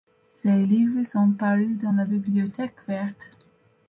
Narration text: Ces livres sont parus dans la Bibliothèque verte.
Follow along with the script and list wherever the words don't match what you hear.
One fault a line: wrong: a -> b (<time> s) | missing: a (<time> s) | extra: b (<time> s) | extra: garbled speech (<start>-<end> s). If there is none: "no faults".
no faults